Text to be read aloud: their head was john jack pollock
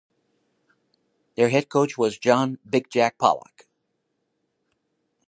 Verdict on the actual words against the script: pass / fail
fail